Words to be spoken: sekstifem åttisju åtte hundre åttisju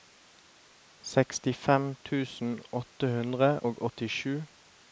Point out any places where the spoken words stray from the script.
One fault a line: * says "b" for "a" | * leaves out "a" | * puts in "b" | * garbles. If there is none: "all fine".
* says "tusen" for "åttisju"
* puts in "og"